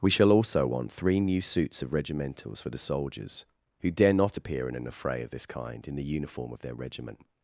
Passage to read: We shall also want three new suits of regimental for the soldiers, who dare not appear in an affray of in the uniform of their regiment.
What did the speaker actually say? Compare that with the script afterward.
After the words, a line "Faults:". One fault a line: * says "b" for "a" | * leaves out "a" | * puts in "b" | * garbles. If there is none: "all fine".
We shall also want three new suits of regimentals for the soldiers, who dare not appear in an affray of this kind in the uniform of their regiment.
Faults:
* says "regimentals" for "regimental"
* puts in "this kind"